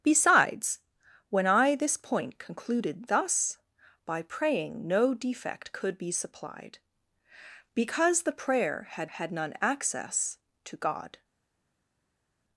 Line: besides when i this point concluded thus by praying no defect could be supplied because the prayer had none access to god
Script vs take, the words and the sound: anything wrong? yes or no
yes